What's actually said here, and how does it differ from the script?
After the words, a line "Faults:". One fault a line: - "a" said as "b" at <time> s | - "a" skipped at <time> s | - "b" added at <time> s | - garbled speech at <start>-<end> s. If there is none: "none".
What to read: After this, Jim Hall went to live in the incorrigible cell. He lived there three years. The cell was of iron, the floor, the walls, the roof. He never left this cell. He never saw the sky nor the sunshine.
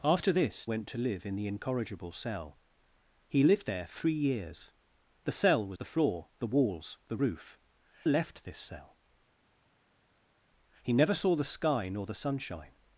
After this, Went to live in the incorrigible cell. He lived there three years. The cell was the floor, the walls, the roof. Left this cell. He never saw the sky nor the sunshine.
Faults:
- "Jim Hall" skipped at 0.7 s
- "of iron" skipped at 5.8 s
- "He never" skipped at 7.6 s